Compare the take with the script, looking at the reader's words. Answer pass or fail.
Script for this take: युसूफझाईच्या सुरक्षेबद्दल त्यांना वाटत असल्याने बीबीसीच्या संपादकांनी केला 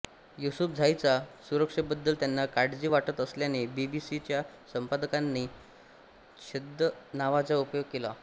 fail